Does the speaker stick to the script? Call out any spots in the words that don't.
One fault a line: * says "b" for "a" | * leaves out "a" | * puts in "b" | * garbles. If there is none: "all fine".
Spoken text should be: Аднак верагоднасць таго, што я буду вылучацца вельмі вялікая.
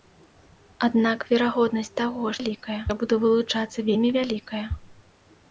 * says "вялікая" for "што"